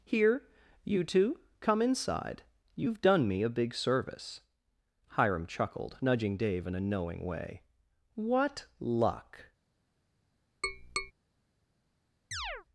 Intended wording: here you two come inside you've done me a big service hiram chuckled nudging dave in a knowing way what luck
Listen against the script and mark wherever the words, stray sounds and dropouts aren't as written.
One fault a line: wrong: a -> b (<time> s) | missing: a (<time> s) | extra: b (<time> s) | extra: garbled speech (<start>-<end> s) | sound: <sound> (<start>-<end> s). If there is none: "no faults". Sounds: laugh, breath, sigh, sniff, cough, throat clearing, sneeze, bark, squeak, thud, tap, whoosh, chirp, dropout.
sound: tap (10.6-11.1 s)
sound: chirp (12.3-12.7 s)